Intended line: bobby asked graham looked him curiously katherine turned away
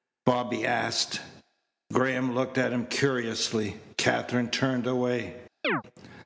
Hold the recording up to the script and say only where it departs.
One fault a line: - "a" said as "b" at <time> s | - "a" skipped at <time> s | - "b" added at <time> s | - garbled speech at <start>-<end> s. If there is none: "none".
- "at" added at 2.6 s